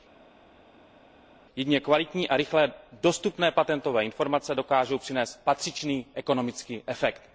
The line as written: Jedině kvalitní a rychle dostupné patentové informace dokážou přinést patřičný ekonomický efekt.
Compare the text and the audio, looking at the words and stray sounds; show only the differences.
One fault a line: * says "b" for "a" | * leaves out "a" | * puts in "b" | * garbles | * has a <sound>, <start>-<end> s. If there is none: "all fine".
all fine